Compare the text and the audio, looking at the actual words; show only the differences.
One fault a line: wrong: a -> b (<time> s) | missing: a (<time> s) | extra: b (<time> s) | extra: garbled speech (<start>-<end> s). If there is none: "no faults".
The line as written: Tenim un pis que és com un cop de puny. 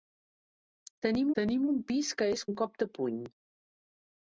extra: tenim (1.4 s)
missing: com (2.5 s)